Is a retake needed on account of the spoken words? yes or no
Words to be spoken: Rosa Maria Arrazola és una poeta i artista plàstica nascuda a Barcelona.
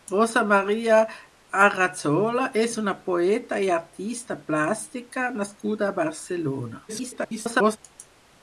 yes